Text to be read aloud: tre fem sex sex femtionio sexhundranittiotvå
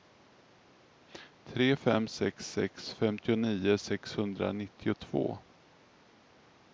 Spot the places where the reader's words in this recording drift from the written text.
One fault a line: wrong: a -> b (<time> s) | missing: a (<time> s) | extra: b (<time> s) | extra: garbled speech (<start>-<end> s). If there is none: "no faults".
no faults